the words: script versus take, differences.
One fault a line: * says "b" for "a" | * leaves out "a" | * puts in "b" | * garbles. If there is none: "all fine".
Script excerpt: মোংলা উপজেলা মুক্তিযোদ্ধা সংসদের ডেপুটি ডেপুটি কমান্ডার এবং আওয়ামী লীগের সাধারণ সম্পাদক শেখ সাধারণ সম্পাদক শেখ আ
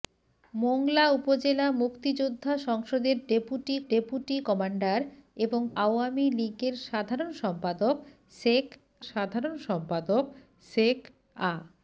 all fine